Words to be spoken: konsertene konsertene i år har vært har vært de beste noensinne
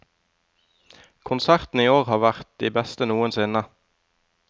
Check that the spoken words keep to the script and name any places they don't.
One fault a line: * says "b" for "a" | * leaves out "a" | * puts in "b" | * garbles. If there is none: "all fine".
* leaves out "konsertene"
* leaves out "har vært"